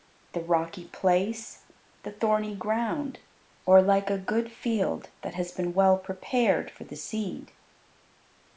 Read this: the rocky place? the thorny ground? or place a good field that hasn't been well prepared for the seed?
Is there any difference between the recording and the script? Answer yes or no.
yes